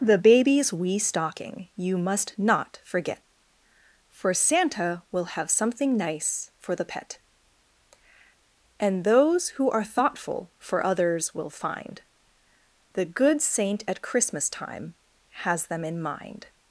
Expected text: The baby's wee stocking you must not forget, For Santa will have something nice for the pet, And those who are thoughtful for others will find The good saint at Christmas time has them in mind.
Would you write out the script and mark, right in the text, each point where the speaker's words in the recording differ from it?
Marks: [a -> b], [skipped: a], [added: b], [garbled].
The baby's wee stocking you must not forget, For Santa will have something nice for the pet, And those who are thoughtful for others will find The good saint at Christmas time has them in mind.